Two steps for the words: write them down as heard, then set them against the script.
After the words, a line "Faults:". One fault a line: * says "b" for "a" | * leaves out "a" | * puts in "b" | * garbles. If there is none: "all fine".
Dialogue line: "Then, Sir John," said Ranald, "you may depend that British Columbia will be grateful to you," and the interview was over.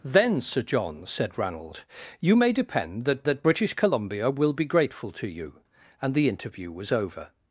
"Then, Sir John," said Ranald, "you may depend that that British Columbia will be grateful to you," and the interview was over.
Faults:
* puts in "that"